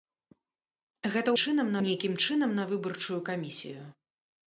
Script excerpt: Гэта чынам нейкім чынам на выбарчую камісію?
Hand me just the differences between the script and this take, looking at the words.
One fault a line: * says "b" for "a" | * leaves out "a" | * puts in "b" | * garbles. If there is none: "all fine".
all fine